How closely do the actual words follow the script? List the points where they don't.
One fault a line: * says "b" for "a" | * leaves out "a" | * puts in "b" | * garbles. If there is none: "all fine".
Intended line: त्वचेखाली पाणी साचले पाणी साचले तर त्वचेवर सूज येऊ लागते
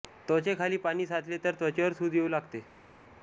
* leaves out "पाणी साचले"